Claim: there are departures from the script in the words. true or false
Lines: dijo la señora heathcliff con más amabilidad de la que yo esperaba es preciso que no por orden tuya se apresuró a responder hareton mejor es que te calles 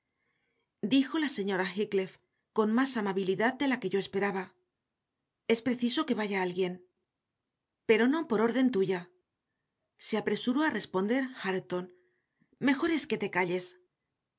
true